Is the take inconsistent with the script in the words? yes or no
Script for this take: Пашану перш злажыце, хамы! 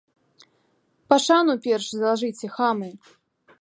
no